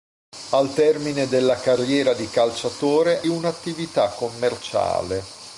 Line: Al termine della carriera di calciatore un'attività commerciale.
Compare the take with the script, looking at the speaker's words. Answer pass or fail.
pass